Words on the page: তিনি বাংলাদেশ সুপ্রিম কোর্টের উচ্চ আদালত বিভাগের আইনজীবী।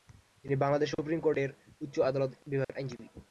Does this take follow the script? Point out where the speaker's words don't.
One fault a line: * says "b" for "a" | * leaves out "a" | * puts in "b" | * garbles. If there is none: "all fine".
all fine